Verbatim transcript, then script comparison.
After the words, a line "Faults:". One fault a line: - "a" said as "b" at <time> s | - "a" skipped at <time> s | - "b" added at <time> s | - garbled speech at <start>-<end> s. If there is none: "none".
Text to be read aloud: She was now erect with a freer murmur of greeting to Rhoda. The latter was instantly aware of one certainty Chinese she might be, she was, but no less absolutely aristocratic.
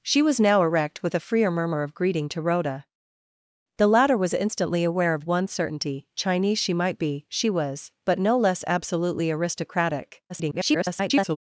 She was now erect with a freer murmur of greeting to Rhoda. The latter was instantly aware of one certainty Chinese she might be, she was, but no less absolutely aristocratic. [garbled]
Faults:
- garbled speech at 10.3-11.4 s